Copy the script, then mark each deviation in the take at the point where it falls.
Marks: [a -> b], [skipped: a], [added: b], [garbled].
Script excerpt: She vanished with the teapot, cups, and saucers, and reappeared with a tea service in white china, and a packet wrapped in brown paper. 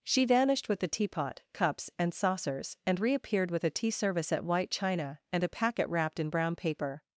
She vanished with the teapot, cups, and saucers, and reappeared with a tea service [in -> at] white china, and a packet wrapped in brown paper.